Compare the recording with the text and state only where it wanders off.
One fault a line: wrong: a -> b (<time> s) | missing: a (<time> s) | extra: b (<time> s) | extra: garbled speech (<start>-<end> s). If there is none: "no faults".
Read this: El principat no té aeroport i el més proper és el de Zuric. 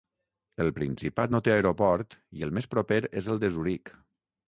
no faults